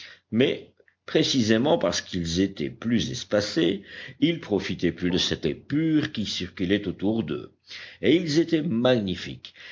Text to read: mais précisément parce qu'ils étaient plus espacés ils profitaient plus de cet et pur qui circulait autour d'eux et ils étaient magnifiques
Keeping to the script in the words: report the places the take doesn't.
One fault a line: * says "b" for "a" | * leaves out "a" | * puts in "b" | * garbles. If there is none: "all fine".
all fine